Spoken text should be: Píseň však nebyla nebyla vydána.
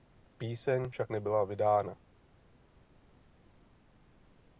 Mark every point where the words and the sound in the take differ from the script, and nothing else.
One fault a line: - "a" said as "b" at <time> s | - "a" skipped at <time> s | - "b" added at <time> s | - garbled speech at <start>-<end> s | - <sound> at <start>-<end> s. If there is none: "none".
- "nebyla" skipped at 1.4 s